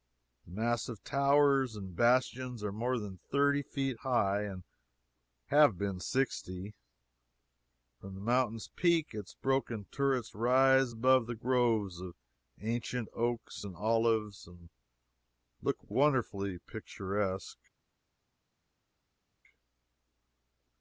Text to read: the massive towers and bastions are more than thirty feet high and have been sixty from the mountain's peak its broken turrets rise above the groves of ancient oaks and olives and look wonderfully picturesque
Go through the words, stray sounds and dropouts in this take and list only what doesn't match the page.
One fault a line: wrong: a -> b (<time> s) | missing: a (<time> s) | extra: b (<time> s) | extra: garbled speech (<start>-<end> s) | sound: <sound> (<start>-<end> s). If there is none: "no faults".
no faults